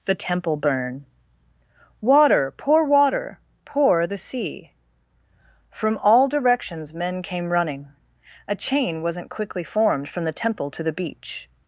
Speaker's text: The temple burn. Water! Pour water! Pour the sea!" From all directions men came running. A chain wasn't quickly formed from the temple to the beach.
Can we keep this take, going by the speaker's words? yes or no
yes